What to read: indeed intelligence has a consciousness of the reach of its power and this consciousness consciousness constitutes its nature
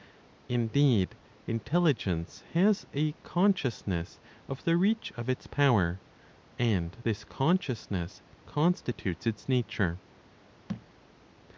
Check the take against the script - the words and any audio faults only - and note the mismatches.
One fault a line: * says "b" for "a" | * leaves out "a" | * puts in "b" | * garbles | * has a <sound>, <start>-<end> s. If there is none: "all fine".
* leaves out "consciousness"
* has a thud, 10.7-10.9 s